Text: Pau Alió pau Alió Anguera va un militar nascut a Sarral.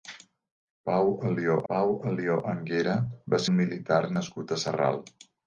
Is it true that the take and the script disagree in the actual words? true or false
false